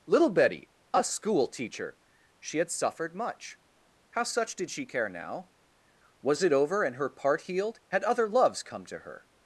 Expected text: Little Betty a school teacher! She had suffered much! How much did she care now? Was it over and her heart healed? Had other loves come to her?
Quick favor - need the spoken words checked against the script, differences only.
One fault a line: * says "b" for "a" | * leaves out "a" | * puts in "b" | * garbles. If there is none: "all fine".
* says "such" for "much"
* says "part" for "heart"